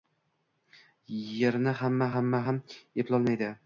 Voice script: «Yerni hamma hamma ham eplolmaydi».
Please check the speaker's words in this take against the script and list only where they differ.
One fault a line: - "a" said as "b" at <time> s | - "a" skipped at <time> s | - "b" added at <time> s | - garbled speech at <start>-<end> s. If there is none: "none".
none